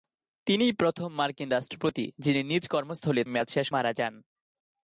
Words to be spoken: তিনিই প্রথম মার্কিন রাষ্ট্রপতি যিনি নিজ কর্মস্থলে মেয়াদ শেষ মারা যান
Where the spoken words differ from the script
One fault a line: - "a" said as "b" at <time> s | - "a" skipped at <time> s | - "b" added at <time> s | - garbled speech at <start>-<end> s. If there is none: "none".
none